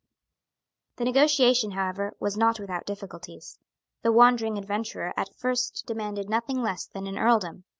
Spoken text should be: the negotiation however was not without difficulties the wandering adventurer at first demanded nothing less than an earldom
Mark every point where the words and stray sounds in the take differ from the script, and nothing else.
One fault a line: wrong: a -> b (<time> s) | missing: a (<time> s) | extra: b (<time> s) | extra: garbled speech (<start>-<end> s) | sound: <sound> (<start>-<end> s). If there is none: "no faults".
no faults